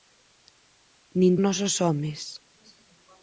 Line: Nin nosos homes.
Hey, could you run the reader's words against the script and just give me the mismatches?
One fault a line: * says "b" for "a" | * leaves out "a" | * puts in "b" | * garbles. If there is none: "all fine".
all fine